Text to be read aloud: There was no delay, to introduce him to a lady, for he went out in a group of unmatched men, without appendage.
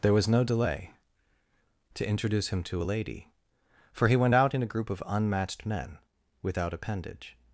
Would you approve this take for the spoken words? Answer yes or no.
yes